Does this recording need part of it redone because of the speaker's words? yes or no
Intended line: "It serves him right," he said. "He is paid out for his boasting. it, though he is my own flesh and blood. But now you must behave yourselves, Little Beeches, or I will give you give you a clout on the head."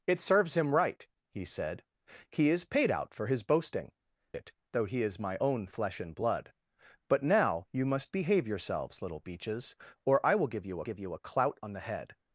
no